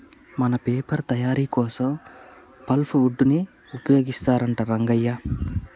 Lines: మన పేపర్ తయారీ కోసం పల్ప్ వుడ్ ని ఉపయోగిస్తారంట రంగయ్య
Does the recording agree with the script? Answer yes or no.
yes